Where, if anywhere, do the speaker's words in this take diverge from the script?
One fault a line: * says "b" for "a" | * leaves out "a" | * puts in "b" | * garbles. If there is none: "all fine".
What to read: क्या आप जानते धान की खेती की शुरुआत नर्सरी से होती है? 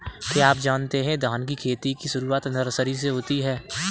* puts in "है"